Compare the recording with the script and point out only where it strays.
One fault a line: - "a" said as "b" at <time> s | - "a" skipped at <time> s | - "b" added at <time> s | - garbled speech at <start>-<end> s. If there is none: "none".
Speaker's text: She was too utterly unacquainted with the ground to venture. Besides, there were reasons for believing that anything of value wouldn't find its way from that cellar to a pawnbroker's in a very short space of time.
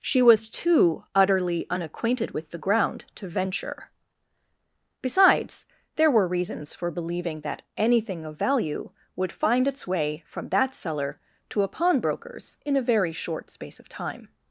- "wouldn't" said as "would" at 9.2 s